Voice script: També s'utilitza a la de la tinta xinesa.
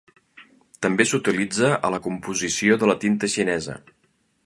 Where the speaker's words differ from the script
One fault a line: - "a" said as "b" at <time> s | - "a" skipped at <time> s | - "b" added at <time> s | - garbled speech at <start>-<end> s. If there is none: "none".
- "composició" added at 2.1 s